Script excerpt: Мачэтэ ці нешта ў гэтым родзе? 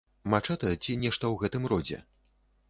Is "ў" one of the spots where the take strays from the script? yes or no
no